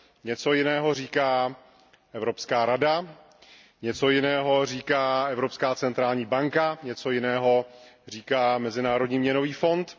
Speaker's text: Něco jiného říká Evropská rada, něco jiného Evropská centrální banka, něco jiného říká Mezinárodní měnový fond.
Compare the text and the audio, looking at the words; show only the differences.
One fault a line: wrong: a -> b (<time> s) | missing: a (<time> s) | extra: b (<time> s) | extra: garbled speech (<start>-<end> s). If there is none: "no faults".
extra: říká (4.7 s)